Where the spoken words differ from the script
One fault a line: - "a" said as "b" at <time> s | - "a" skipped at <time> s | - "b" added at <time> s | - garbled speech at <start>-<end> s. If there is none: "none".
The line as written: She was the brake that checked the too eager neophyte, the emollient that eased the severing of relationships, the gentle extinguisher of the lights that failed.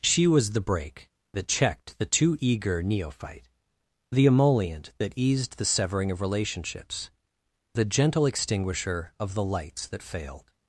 none